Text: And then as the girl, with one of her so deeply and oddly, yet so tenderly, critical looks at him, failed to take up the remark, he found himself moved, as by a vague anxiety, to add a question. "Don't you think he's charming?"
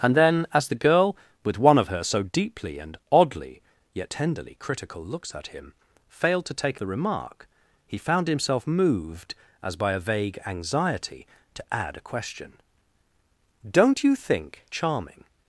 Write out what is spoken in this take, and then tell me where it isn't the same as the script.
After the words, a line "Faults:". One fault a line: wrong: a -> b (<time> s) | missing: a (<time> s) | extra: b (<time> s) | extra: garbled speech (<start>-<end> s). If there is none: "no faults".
And then as the girl, with one of her so deeply and oddly, yet tenderly, critical looks at him, failed to take the remark, he found himself moved, as by a vague anxiety, to add a question. "Don't you think charming?"
Faults:
missing: so (4.1 s)
missing: up (6.8 s)
missing: he's (14.6 s)